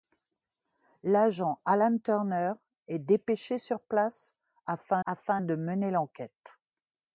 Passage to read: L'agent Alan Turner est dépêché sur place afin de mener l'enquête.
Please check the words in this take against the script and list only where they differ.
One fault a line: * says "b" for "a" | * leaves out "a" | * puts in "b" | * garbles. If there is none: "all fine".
* puts in "afin"